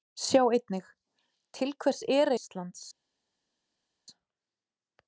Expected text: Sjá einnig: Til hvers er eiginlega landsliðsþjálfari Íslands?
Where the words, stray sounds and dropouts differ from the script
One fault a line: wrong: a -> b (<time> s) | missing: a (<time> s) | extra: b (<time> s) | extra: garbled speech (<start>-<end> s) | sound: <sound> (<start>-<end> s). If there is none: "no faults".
missing: eiginlega landsliðsþjálfari (2.3 s)